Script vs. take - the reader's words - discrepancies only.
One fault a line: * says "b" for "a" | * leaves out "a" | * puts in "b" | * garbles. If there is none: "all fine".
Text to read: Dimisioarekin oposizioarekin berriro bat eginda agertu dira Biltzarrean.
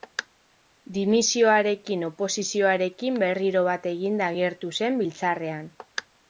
* says "zen" for "dira"